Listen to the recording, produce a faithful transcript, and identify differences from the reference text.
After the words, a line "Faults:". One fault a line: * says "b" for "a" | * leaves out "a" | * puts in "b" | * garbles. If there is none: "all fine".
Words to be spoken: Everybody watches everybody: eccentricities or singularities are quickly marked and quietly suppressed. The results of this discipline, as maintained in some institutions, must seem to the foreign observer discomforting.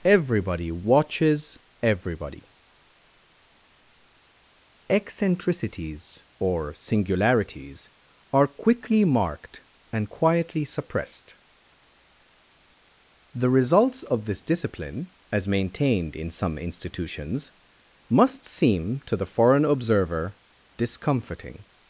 Everybody watches everybody: eccentricities or singularities are quickly marked and quietly suppressed. The results of this discipline, as maintained in some institutions, must seem to the foreign observer discomforting.
Faults:
all fine